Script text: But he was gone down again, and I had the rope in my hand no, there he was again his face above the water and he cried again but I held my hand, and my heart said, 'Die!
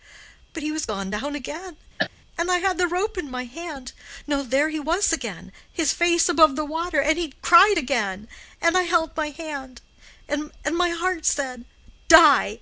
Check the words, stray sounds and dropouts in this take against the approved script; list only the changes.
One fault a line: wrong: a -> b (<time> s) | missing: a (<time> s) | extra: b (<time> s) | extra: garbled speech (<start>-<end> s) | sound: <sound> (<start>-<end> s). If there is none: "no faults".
sound: cough (2.0-2.1 s)
wrong: but -> and (8.6 s)